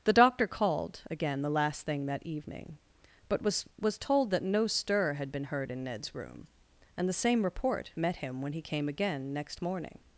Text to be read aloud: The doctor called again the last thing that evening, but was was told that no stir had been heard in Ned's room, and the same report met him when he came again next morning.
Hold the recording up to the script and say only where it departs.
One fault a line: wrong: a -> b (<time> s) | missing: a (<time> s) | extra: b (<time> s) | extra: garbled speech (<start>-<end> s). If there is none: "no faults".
no faults